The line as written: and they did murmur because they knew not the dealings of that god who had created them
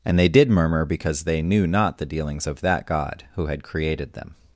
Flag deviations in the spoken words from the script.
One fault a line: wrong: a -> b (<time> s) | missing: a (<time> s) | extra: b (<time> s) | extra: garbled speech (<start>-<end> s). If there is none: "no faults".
no faults